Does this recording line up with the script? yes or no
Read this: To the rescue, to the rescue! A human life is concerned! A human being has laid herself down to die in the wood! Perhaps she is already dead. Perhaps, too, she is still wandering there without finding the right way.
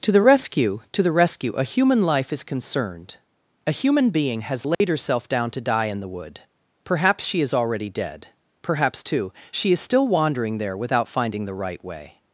yes